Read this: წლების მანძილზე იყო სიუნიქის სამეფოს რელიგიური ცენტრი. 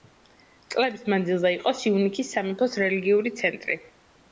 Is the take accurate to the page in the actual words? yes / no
yes